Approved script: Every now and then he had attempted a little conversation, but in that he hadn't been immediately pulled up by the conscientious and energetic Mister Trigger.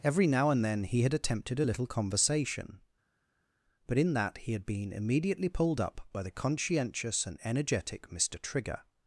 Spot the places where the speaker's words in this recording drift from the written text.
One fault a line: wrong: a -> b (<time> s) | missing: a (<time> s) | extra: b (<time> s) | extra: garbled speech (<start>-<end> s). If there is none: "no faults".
wrong: hadn't -> had (4.5 s)